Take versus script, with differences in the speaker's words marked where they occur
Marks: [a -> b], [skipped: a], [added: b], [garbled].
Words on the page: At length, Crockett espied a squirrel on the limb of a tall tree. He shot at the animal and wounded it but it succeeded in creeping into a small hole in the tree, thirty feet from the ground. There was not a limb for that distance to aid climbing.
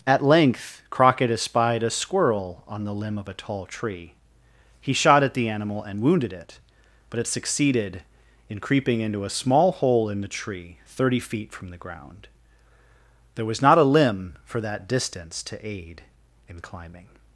At length, Crockett espied a squirrel on the limb of a tall tree. He shot at the animal and wounded it but it succeeded in creeping into a small hole in the tree, thirty feet from the ground. There was not a limb for that distance to aid [added: in] climbing.